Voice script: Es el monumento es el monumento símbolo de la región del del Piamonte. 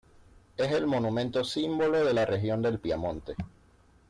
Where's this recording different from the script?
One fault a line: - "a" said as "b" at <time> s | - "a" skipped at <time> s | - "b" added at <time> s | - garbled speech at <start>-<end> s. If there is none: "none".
- "es el monumento" skipped at 1.4 s
- "del" skipped at 2.8 s